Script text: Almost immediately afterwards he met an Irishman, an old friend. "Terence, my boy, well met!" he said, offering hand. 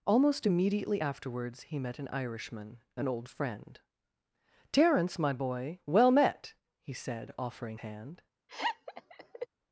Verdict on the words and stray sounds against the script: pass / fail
fail